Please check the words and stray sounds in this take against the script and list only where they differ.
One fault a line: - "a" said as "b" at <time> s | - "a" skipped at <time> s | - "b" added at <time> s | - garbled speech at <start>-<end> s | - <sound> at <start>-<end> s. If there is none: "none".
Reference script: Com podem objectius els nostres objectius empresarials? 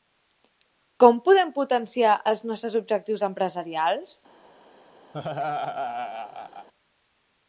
- "objectius" said as "potenciar" at 1.6 s
- laugh at 5.1-6.7 s